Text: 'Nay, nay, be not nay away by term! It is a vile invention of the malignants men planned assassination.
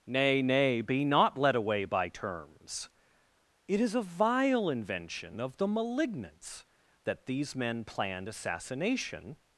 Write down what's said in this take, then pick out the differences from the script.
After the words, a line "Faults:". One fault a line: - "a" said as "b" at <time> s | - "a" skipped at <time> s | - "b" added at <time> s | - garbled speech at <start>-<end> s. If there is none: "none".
'Nay, nay, be not led away by terms! It is a vile invention of the malignants that these men planned assassination.
Faults:
- "nay" said as "led" at 1.4 s
- "term" said as "terms" at 2.1 s
- "that these" added at 7.0 s